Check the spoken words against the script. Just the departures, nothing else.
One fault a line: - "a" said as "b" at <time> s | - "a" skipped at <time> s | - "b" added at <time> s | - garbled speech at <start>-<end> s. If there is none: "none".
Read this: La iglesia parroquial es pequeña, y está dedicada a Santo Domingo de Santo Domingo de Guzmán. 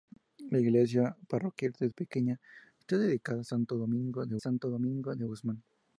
none